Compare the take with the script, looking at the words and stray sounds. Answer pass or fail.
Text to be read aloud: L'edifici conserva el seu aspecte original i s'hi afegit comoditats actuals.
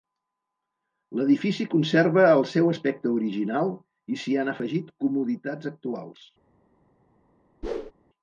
fail